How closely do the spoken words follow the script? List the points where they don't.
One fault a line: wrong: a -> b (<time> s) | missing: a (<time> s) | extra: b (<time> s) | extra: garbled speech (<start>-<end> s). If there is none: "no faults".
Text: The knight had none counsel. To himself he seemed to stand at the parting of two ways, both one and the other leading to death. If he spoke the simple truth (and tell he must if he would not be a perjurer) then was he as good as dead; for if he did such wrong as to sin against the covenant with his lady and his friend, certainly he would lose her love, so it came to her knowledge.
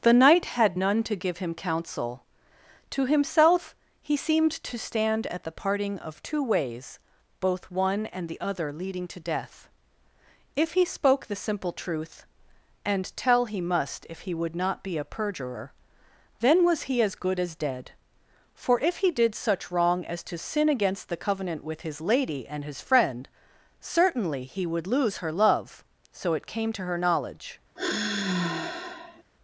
extra: to give him (1.0 s)